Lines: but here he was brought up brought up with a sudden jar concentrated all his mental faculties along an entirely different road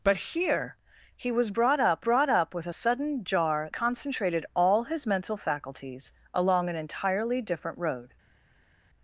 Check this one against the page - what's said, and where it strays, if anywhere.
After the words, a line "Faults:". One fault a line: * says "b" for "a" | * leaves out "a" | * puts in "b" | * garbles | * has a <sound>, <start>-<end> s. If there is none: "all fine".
but here he was brought up brought up with a sudden jar concentrated all his mental faculties along an entirely different road
Faults:
all fine